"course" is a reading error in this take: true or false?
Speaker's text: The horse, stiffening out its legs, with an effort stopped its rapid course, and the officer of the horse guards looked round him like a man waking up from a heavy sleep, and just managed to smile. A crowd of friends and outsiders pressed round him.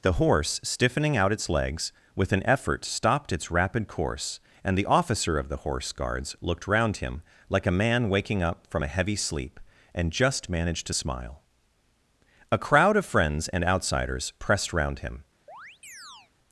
false